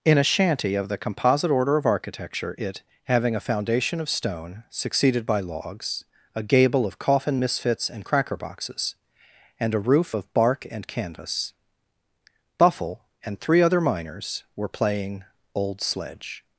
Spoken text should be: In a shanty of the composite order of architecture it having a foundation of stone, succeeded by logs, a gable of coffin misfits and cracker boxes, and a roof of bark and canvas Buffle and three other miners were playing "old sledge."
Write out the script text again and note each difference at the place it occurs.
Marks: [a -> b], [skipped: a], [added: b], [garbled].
In a shanty of the composite order of architecture it having a foundation of stone, succeeded by logs, a gable of coffin misfits and cracker boxes, and a roof of bark and canvas Buffle and three other miners were playing "old sledge."